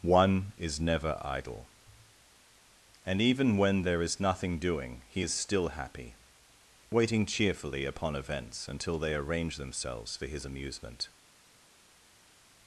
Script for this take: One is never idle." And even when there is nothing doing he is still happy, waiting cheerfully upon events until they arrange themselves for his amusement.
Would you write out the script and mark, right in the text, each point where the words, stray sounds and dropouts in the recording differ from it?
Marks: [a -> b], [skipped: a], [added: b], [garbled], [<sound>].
One is never idle." And even when there is nothing doing he is still happy, waiting cheerfully upon events until they arrange themselves for his amusement.